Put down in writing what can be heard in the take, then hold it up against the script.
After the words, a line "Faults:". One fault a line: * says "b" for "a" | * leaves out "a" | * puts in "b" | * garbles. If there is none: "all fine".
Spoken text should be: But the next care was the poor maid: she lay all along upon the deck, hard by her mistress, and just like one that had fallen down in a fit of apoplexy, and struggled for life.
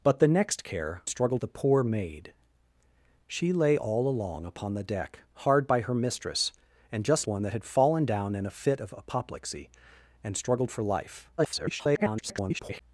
But the next care struggled the poor maid: she lay all along upon the deck, hard by her mistress, and just one that had fallen down in a fit of apoplexy, and struggled for life. [garbled]
Faults:
* says "struggled" for "was"
* leaves out "like"
* garbles